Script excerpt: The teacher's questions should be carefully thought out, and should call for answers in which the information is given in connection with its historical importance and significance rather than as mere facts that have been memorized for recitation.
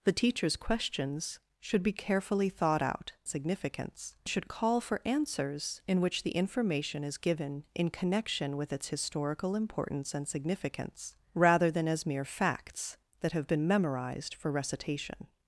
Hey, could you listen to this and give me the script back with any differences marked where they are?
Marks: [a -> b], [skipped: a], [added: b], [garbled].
The teacher's questions should be carefully thought out, [and -> significance] should call for answers in which the information is given in connection with its historical importance and significance rather than as mere facts that have been memorized for recitation.